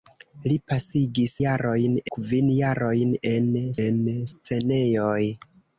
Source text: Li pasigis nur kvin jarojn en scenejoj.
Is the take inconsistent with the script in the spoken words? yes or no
yes